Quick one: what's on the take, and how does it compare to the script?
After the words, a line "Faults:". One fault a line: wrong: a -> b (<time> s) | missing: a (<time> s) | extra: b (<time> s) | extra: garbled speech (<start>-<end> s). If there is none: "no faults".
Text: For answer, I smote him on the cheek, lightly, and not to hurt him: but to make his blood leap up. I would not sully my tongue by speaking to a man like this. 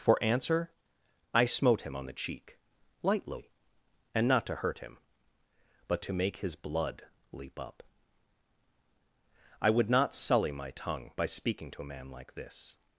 For answer, I smote him on the cheek, lightly, and not to hurt him: but to make his blood leap up. I would not sully my tongue by speaking to a man like this.
Faults:
no faults